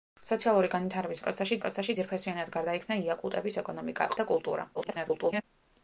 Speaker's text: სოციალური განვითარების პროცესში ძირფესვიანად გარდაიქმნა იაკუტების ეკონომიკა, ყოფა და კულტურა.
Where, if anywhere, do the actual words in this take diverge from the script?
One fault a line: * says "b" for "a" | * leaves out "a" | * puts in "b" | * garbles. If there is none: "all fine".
* puts in "პროცესში"
* leaves out "ყოფა"
* garbles